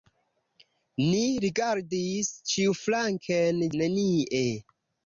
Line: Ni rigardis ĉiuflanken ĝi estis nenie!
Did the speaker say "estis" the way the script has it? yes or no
no